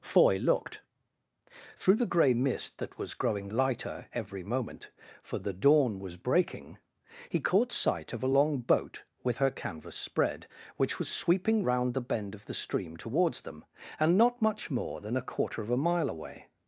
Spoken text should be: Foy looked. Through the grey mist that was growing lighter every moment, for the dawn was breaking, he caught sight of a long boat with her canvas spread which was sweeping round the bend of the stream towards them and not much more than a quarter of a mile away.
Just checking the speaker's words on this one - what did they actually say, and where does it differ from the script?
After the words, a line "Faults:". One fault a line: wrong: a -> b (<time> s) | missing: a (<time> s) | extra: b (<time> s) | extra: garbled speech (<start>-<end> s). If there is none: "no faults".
Foy looked. Through the grey mist that was growing lighter every moment, for the dawn was breaking, he caught sight of a long boat with her canvas spread which was sweeping round the bend of the stream towards them and not much more than a quarter of a mile away.
Faults:
no faults